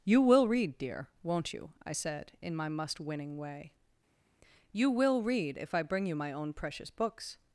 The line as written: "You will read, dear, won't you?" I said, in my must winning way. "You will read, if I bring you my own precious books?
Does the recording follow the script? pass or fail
pass